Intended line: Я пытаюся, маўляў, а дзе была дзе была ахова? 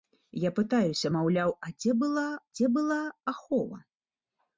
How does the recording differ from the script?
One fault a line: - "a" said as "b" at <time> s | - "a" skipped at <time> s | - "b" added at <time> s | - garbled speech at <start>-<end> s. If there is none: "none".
none